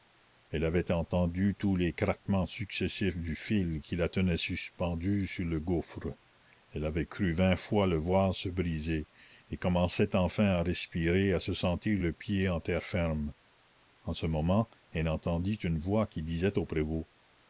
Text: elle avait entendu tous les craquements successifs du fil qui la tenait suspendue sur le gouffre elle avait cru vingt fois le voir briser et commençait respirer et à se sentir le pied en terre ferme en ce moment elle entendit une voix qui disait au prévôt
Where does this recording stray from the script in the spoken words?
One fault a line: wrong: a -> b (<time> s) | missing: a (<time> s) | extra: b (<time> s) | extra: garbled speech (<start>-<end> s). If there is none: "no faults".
extra: se (8.3 s)
extra: enfin à (10.2 s)